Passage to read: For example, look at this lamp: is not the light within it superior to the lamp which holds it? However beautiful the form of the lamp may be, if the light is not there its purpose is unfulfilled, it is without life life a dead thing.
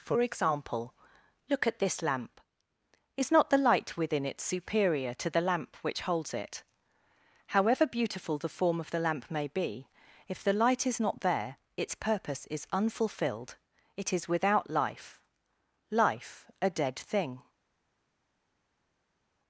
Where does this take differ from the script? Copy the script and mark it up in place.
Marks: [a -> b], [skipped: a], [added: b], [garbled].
For example, look at this lamp: is not the light within it superior to the lamp which holds it? However beautiful the form of the lamp may be, if the light is not there its purpose is unfulfilled, it is without life life a dead thing.